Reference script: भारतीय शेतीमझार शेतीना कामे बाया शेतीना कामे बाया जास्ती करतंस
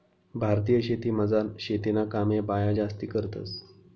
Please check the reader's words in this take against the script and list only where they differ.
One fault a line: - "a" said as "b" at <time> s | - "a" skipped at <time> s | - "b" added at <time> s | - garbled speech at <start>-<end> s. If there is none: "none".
- "शेतीना कामे बाया" skipped at 2.7 s